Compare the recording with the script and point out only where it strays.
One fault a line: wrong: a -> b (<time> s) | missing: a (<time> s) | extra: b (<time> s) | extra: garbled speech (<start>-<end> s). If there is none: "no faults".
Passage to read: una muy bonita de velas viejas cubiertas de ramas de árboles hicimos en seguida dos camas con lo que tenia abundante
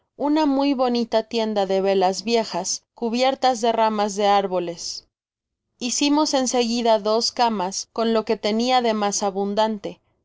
extra: tienda (1.2 s)
extra: de mas (8.8 s)